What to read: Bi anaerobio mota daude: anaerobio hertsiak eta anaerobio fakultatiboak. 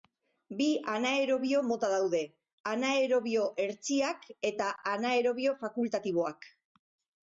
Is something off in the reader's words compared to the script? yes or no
no